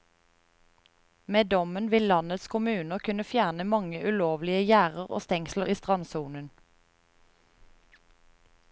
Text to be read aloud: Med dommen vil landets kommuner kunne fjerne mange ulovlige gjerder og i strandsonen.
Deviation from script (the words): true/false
true